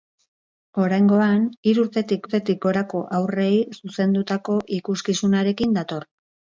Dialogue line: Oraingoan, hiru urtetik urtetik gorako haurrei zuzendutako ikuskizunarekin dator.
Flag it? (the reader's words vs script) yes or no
no